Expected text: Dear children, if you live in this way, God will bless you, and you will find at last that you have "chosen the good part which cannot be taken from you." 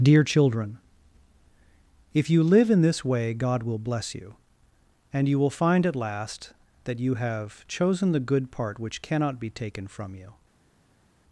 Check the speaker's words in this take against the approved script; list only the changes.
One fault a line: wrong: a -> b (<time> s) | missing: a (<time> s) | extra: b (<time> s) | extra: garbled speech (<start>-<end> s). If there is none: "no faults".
no faults